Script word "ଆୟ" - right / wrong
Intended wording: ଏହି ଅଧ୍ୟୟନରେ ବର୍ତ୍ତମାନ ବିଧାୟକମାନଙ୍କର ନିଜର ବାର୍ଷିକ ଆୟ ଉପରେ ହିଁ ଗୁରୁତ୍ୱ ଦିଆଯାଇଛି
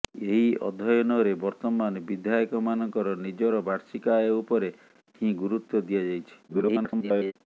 right